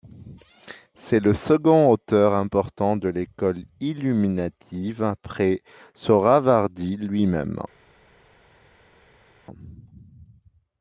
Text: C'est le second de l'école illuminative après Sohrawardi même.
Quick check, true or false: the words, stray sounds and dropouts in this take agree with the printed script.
false